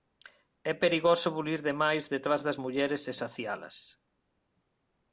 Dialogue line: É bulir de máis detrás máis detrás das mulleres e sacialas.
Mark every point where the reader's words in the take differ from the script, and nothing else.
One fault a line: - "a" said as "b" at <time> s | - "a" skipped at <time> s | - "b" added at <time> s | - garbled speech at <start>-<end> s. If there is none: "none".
- "perigoso" added at 0.8 s
- "máis detrás" skipped at 2.4 s